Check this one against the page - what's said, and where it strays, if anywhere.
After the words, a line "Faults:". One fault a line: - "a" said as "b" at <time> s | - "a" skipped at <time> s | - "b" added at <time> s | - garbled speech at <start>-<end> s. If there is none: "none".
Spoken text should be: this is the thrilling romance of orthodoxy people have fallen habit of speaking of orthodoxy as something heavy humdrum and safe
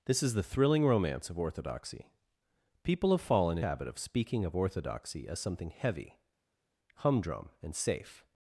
this is the thrilling romance of orthodoxy people have fallen habit of speaking of orthodoxy as something heavy humdrum and safe
Faults:
none